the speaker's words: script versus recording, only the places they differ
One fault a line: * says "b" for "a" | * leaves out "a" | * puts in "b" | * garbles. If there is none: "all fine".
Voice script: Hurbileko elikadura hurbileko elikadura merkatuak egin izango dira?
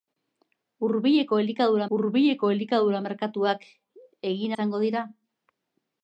all fine